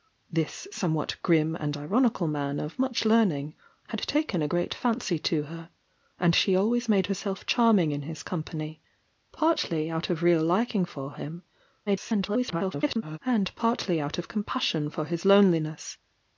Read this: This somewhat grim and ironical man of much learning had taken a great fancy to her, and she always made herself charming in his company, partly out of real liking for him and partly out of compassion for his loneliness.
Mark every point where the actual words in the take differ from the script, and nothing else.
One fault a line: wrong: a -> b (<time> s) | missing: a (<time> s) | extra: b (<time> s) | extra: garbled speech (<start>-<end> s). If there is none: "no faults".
extra: garbled speech (11.9-13.2 s)